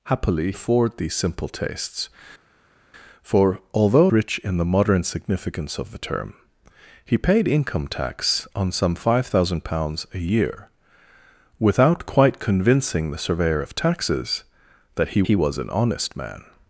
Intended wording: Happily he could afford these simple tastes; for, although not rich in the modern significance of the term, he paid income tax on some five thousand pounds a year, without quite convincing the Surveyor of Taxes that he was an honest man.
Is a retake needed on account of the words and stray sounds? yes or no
yes